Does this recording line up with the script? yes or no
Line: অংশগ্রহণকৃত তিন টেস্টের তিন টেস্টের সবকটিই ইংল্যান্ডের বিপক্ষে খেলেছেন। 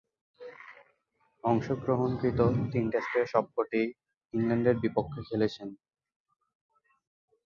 no